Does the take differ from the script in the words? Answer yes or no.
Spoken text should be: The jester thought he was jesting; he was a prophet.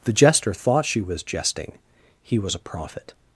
yes